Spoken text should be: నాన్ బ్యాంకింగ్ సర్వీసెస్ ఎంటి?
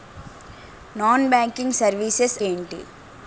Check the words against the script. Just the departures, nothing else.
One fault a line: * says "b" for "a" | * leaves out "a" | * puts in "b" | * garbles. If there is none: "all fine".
all fine